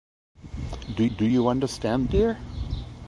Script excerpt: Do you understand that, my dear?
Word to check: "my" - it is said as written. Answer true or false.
false